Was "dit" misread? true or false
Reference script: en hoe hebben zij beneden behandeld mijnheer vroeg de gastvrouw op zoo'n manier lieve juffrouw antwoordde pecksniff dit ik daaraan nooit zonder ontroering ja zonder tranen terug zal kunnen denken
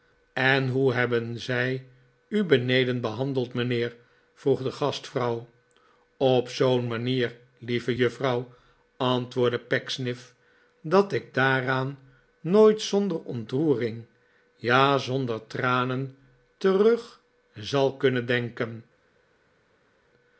true